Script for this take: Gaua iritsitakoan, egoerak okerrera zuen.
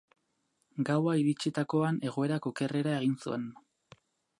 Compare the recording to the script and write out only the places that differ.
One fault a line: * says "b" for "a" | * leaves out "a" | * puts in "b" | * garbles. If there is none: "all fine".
* puts in "egin"